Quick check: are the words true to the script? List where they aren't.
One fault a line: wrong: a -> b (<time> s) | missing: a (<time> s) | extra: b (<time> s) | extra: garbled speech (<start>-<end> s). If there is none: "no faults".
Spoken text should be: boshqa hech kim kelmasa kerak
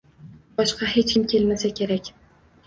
no faults